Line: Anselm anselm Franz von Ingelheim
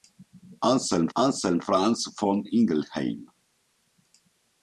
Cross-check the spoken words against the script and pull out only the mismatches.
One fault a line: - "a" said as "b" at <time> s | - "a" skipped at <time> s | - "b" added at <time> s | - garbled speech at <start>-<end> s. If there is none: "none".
none